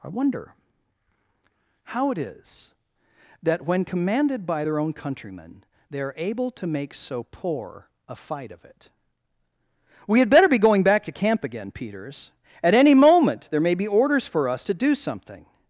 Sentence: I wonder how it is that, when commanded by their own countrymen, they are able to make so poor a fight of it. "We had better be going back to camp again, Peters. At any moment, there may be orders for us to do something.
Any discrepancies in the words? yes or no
no